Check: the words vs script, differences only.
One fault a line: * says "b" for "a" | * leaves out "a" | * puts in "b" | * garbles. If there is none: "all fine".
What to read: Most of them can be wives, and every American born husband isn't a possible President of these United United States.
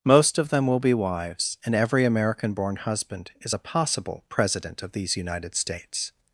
* says "will" for "can"
* says "is" for "isn't"
* leaves out "United"